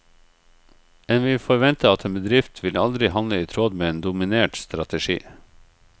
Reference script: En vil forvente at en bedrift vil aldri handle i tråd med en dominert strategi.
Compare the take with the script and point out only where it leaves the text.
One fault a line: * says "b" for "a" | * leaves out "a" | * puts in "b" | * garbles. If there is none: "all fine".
all fine